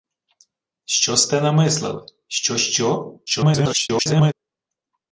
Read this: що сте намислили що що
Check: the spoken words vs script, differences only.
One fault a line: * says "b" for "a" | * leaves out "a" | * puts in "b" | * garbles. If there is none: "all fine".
* garbles